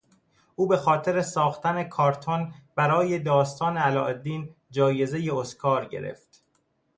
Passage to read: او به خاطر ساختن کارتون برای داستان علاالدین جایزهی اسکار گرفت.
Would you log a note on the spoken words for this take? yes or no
no